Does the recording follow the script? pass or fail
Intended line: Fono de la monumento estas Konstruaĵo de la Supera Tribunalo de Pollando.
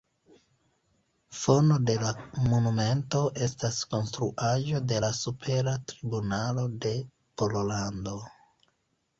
pass